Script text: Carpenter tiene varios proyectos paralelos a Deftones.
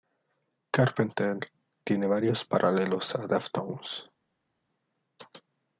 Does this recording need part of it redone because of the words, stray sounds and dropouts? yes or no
yes